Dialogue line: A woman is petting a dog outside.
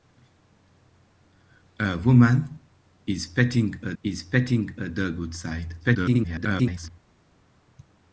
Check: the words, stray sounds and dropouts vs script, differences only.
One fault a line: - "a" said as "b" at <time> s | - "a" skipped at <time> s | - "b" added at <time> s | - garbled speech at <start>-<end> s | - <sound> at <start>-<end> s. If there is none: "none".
- "is petting a" added at 4.0 s
- garbled speech at 5.8-6.9 s